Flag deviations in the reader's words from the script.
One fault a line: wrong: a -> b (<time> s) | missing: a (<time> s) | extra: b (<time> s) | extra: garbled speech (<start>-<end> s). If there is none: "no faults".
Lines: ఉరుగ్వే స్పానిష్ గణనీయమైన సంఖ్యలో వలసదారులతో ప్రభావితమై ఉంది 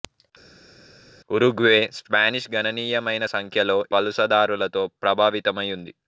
no faults